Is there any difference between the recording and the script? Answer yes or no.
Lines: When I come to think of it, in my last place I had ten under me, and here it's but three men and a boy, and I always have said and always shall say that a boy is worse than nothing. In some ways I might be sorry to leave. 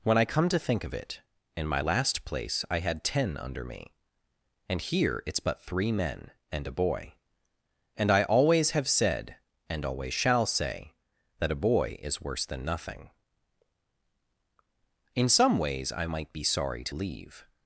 no